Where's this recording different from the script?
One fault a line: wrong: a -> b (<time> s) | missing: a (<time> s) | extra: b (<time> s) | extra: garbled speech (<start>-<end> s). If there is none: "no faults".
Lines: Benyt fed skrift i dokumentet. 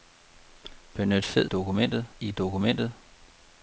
wrong: skrift -> dokumentet (1.4 s)